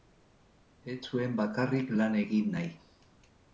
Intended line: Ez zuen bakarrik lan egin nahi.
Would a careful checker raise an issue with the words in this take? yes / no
no